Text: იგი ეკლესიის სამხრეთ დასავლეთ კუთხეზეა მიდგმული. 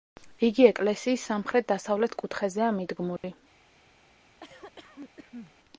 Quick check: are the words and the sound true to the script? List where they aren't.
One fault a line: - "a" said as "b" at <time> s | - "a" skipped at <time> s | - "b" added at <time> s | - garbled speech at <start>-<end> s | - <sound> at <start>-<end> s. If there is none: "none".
- dropout at 3.2-3.2 s
- cough at 4.4-5.5 s